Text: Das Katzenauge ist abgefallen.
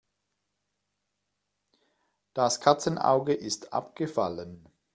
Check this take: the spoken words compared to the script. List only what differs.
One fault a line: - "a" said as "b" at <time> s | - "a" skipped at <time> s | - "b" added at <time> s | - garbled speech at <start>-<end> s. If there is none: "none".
none